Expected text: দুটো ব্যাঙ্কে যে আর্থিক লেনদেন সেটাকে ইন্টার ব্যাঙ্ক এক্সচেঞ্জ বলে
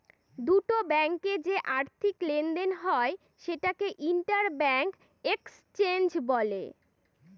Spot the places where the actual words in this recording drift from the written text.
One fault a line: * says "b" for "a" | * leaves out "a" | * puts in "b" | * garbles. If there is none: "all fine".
* puts in "হয়"